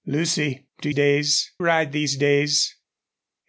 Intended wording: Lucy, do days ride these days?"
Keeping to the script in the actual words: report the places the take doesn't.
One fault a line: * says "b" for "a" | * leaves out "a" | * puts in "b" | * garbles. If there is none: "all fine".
all fine